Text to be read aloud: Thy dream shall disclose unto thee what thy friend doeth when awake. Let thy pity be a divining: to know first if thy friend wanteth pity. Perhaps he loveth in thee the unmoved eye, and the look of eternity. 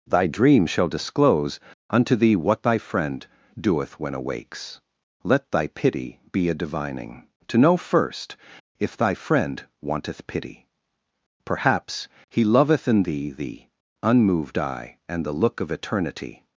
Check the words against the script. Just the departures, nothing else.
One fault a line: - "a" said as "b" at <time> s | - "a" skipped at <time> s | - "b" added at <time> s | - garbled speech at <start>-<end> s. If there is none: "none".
- "awake" said as "awakes" at 4.1 s